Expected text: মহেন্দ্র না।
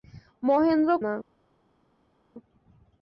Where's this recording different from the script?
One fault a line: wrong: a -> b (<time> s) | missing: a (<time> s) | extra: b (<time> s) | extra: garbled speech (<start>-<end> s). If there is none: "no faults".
no faults